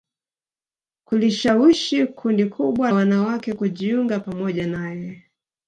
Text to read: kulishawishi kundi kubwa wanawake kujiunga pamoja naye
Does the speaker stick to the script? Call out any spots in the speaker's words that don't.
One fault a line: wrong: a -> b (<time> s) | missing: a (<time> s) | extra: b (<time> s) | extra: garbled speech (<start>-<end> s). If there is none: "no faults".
no faults